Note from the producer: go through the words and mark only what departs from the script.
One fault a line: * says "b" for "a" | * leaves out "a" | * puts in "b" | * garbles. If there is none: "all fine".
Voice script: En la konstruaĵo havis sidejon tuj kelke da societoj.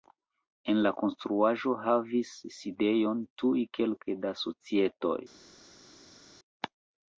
all fine